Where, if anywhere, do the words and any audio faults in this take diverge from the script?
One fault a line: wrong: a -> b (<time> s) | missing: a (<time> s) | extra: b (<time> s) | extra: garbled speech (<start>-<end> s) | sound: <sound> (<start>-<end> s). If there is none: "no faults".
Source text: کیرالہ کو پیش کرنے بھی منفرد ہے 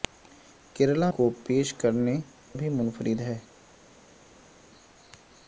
no faults